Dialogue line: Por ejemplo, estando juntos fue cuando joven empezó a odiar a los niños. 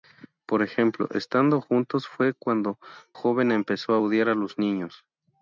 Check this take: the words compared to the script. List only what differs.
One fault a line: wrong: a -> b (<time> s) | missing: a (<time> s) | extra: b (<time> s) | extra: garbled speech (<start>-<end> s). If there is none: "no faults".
no faults